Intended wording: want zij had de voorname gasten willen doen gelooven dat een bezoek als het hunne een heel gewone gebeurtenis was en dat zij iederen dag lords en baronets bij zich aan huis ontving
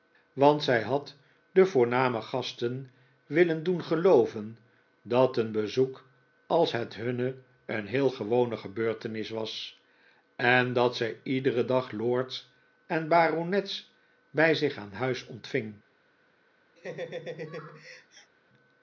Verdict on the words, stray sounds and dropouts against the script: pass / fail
fail